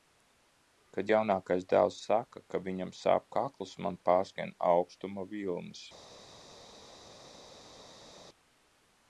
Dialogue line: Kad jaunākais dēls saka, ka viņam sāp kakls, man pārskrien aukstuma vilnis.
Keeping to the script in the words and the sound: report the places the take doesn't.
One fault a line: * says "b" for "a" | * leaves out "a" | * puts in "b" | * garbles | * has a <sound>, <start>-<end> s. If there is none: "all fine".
all fine